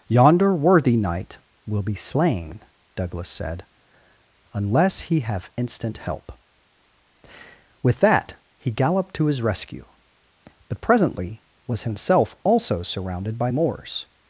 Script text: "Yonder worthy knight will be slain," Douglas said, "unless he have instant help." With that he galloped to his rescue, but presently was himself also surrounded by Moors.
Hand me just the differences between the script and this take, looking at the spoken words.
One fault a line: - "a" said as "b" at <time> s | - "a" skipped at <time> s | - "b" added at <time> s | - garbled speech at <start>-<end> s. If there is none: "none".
none